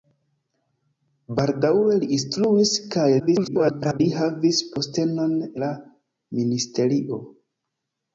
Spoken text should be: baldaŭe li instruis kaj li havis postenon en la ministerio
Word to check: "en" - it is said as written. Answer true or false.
false